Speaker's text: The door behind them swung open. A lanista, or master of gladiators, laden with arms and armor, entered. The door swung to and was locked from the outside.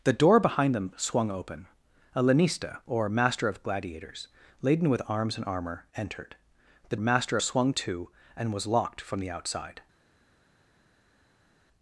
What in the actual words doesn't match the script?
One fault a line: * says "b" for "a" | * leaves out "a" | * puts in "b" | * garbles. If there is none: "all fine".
* says "master" for "door"